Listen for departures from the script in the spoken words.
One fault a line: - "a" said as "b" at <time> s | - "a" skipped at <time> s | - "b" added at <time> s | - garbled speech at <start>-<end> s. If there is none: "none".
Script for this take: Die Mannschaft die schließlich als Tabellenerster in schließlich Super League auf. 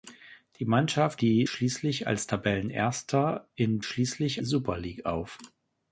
none